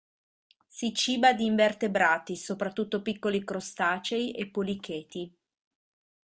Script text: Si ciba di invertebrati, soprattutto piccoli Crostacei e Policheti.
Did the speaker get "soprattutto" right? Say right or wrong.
right